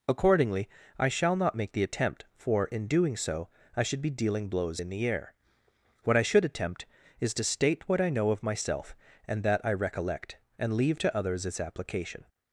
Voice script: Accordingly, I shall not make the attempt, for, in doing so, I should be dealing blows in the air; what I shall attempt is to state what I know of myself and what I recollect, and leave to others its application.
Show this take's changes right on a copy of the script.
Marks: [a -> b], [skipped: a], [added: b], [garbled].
Accordingly, I shall not make the attempt, for, in doing so, I should be dealing blows in the air; what I [shall -> should] attempt is to state what I know of myself and [what -> that] I recollect, and leave to others its application.